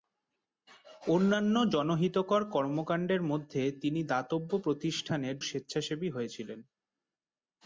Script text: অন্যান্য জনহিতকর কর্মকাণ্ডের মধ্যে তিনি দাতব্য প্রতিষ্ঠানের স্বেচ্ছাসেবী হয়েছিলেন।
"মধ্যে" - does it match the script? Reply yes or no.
yes